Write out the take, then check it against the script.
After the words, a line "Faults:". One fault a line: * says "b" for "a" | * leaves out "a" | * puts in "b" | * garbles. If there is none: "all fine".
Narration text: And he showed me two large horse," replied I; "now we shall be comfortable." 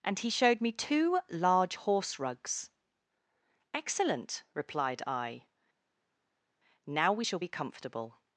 And he showed me two large horse rugs. "Excellent," replied I; "now we shall be comfortable."
Faults:
* puts in "rugs Excellent"